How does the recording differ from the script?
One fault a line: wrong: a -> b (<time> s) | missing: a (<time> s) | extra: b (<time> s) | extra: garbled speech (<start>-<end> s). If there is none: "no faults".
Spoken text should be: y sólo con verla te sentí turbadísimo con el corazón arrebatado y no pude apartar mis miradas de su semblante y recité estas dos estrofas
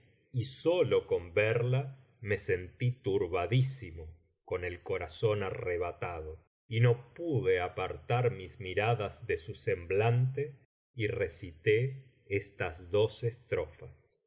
wrong: te -> me (2.2 s)